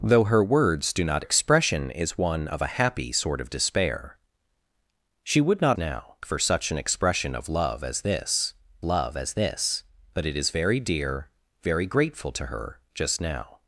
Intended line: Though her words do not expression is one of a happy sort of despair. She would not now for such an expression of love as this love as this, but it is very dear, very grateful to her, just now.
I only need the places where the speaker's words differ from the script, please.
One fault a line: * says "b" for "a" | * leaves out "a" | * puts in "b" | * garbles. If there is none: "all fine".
all fine